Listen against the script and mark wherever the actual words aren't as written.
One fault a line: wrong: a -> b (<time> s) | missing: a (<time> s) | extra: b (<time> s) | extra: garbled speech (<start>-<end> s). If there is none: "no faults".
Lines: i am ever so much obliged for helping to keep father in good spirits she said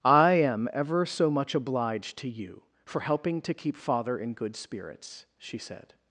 extra: to you (2.2 s)